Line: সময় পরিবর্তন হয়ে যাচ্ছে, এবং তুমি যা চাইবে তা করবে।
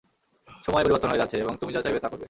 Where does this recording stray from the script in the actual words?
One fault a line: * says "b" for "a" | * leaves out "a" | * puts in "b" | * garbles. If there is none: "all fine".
all fine